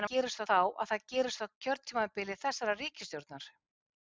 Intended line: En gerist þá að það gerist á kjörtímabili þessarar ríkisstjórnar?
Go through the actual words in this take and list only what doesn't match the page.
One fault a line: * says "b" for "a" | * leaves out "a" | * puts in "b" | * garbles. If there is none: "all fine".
all fine